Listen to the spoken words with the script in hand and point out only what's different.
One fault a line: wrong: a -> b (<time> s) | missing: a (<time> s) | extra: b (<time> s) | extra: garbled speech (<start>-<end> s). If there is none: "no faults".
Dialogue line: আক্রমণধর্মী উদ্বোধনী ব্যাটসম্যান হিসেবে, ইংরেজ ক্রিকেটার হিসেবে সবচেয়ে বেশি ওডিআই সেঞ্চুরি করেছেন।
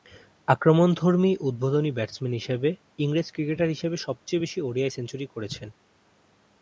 no faults